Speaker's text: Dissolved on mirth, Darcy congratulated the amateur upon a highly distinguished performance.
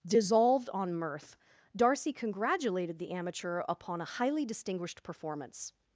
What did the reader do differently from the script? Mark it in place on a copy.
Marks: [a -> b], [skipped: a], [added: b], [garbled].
Dissolved on mirth, Darcy congratulated the amateur upon a highly distinguished performance.